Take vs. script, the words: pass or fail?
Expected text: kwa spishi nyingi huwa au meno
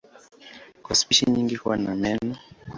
fail